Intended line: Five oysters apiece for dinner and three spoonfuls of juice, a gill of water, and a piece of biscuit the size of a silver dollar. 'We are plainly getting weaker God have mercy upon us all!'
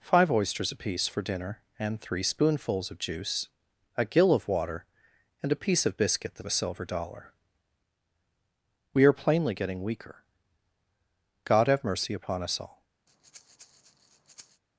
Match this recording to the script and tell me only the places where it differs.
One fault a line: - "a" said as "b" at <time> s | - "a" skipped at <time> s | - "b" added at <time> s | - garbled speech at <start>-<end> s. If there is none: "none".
- "size" skipped at 6.4 s